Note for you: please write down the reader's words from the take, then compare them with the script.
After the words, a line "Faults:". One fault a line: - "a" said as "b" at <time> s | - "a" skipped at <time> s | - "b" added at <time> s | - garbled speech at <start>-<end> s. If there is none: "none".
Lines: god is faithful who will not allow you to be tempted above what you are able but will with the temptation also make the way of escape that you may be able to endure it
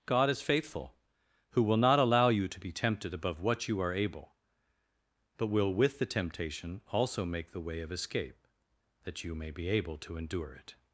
god is faithful who will not allow you to be tempted above what you are able but will with the temptation also make the way of escape that you may be able to endure it
Faults:
none